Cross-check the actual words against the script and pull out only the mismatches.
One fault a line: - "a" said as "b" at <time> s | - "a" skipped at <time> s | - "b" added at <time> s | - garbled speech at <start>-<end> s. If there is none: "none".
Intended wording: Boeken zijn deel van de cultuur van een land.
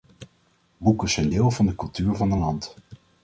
none